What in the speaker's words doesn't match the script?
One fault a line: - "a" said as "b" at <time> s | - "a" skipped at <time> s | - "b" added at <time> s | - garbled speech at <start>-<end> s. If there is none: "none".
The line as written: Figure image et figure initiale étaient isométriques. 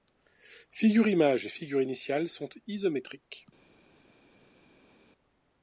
- "étaient" said as "sont" at 2.3 s